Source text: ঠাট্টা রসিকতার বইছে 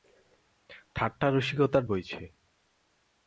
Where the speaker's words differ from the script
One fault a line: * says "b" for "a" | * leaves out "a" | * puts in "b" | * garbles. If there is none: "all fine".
all fine